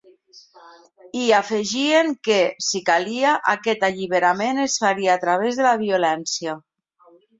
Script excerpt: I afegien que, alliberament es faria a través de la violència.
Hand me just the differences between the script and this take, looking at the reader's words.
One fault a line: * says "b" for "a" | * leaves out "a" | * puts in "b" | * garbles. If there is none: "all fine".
* puts in "si calia aquest"